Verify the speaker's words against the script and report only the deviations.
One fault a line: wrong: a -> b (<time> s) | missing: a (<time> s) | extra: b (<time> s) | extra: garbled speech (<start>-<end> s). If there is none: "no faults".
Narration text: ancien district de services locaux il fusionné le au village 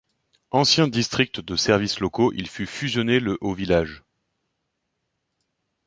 extra: fut (2.5 s)